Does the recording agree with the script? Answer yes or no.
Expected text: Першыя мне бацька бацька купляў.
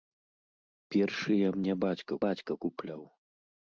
yes